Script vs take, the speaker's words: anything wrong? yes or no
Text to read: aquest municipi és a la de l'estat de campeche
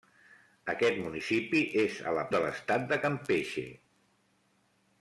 no